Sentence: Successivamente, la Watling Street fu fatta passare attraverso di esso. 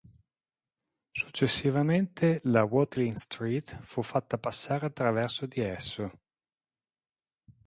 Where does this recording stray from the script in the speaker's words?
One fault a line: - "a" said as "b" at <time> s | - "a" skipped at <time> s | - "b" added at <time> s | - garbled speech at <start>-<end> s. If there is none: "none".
none